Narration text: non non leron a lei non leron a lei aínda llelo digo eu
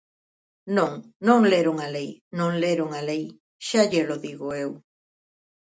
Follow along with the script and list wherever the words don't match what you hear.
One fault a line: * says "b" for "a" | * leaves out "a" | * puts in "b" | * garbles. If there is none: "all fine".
* says "xa" for "aínda"